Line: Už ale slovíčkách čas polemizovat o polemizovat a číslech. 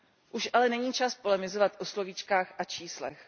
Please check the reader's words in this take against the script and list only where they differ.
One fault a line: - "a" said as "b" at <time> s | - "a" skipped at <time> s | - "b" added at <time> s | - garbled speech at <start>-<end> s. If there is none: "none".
- "slovíčkách" said as "není" at 0.7 s
- "polemizovat" said as "slovíčkách" at 1.9 s